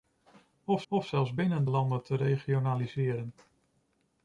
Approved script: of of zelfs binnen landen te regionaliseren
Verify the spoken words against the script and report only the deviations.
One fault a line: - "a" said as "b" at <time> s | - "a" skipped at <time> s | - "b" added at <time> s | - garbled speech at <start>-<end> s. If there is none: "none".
none